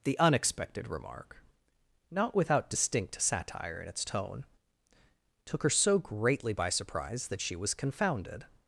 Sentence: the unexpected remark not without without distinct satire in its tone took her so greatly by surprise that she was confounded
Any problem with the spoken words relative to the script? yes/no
yes